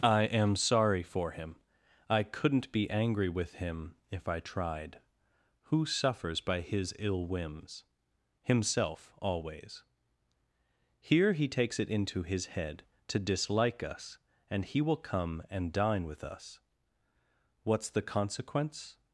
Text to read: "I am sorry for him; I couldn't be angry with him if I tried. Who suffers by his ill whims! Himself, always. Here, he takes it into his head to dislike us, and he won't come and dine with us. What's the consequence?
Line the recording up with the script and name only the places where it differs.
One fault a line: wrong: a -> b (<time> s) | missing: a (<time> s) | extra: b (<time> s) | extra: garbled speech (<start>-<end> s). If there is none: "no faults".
wrong: won't -> will (14.8 s)